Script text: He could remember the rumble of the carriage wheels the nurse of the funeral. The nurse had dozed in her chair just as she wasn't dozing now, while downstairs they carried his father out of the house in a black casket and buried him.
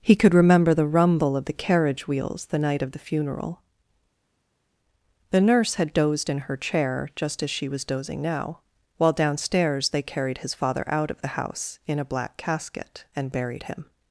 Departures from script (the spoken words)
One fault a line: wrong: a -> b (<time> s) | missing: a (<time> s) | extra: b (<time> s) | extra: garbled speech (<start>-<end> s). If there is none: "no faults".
wrong: nurse -> night (2.6 s)
wrong: wasn't -> was (7.7 s)